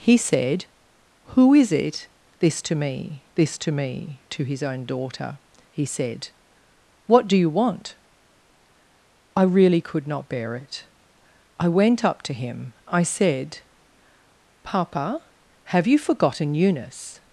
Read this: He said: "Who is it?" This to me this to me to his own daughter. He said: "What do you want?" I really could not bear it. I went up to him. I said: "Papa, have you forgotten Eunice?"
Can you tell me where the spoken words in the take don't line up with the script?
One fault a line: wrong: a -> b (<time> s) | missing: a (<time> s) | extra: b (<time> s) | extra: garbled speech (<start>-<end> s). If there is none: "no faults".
no faults